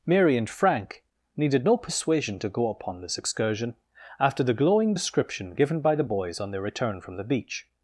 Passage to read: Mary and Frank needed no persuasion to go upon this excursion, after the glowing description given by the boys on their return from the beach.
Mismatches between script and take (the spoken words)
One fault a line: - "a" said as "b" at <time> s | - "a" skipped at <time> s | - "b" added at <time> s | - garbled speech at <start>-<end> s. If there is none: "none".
none